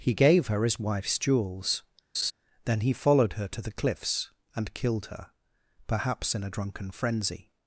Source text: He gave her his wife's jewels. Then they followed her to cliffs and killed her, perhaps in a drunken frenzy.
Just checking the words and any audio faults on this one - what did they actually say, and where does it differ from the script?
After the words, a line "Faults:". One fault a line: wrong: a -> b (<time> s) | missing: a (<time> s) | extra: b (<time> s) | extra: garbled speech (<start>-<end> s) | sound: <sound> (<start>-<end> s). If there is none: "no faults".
He gave her his wife's jewels. Then he followed her to the cliffs and killed her, perhaps in a drunken frenzy.
Faults:
sound: laugh (2.1-2.3 s)
wrong: they -> he (2.8 s)
extra: the (3.6 s)